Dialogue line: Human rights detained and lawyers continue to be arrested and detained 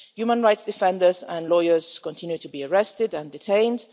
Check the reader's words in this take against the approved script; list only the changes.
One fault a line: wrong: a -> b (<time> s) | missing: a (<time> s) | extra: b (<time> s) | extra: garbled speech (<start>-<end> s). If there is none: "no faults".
wrong: detained -> defenders (0.6 s)